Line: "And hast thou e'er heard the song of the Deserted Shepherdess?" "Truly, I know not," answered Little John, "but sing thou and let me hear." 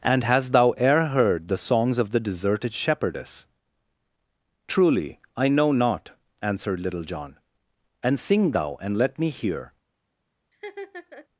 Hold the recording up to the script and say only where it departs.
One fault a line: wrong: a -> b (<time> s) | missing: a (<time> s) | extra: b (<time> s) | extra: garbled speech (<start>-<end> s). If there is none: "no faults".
wrong: song -> songs (1.6 s)
wrong: but -> and (8.0 s)